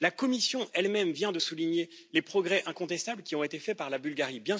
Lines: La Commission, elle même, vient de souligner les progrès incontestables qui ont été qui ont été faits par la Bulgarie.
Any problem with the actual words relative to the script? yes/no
yes